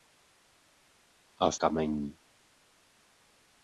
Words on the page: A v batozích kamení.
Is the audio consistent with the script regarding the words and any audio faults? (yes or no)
no